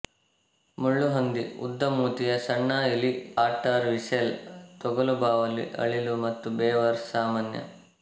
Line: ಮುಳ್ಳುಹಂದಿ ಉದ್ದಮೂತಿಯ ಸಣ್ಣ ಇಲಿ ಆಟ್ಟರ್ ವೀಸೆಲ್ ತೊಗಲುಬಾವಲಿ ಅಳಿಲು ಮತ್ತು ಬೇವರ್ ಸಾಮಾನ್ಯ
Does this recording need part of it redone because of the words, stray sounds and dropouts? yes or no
no